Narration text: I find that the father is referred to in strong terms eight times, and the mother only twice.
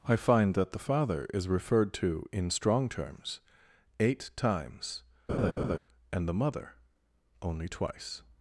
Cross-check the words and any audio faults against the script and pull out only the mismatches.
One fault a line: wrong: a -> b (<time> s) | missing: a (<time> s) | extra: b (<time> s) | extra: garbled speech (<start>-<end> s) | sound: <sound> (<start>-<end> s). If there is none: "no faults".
sound: laugh (5.3-5.8 s)